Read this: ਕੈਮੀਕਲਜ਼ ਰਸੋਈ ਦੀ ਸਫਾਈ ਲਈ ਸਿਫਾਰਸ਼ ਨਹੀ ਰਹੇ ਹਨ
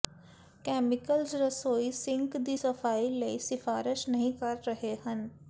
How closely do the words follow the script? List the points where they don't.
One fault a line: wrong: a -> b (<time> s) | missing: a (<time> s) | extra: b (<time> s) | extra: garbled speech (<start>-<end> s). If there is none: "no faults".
extra: ਸਿੰਕ (1.9 s)
extra: ਕਰ (4.3 s)